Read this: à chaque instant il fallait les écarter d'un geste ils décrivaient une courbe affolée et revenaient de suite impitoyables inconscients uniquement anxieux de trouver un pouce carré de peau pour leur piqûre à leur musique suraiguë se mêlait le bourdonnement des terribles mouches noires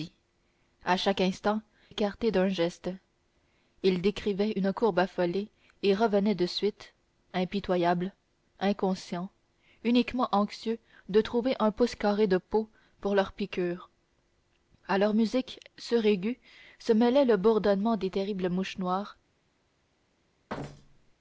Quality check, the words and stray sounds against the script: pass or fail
fail